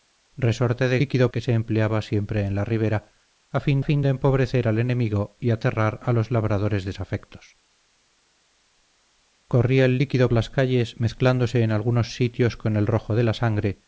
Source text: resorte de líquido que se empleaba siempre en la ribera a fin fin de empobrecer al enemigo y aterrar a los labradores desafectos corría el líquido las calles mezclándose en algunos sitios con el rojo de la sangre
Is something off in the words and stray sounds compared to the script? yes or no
no